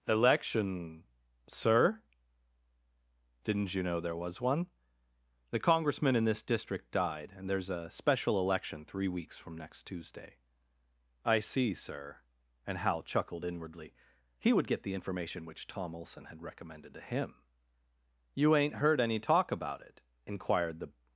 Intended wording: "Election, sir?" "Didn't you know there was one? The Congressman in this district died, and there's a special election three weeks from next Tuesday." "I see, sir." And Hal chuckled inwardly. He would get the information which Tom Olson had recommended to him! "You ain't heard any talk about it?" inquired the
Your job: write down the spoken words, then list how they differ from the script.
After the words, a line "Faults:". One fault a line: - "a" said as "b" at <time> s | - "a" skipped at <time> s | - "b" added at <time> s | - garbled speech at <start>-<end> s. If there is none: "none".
"Election, sir?" "Didn't you know there was one? The Congressman in this district died, and there's a special election three weeks from next Tuesday." "I see, sir." And Hal chuckled inwardly. He would get the information which Tom Olson had recommended to him! "You ain't heard any talk about it?" inquired the
Faults:
none